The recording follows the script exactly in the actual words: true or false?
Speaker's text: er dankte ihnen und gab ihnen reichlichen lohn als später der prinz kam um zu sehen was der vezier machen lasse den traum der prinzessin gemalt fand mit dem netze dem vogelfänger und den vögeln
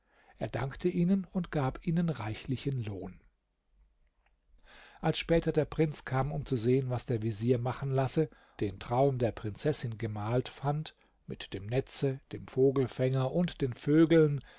true